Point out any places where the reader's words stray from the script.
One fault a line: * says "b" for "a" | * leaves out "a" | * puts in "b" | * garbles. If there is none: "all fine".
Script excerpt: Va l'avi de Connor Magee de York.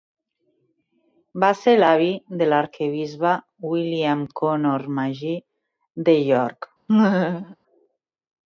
* puts in "ser"
* puts in "l'arquebisbe William"